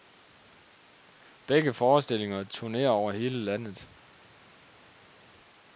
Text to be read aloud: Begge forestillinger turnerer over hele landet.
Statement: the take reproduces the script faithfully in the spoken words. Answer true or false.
true